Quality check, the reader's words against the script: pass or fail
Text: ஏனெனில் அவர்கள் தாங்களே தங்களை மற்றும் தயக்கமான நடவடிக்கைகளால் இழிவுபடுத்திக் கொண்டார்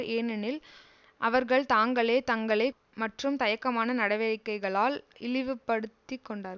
pass